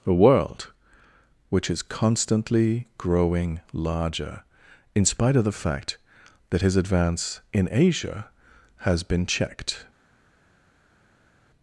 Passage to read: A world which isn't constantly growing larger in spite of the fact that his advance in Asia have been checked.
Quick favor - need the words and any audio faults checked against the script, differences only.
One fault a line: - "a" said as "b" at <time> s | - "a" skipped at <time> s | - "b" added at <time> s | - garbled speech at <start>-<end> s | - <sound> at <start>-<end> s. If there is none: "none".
- "isn't" said as "is" at 1.7 s
- "have" said as "has" at 8.8 s